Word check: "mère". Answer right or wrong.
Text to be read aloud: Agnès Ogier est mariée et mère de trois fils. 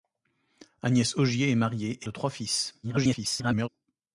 wrong